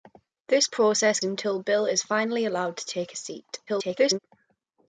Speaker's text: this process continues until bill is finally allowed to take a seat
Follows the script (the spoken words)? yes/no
no